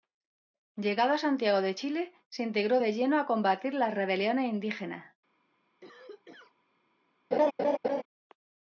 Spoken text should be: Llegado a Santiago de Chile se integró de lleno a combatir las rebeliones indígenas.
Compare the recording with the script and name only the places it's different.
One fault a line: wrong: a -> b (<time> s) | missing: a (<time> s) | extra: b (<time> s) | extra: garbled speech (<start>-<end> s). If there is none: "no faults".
no faults